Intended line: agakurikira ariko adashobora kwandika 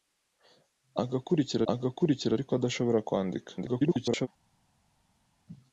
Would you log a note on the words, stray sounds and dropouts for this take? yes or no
yes